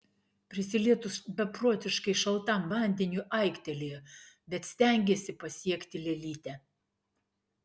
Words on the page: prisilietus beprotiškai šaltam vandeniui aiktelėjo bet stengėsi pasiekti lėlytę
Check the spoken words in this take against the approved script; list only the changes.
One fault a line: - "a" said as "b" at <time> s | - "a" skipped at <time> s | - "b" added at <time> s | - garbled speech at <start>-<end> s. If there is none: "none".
none